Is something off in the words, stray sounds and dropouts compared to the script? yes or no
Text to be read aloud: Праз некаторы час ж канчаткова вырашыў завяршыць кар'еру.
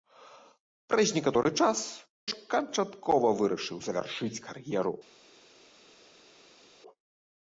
no